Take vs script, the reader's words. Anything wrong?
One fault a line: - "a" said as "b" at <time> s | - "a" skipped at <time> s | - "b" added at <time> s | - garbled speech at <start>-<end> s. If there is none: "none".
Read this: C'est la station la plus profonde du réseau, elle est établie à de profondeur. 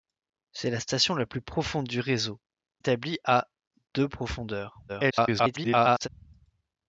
- "elle est" skipped at 2.4 s
- garbled speech at 4.9-6.1 s